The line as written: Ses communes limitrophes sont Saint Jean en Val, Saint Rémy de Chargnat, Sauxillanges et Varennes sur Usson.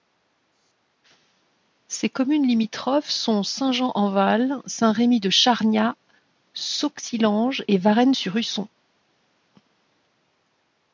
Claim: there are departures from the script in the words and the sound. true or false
false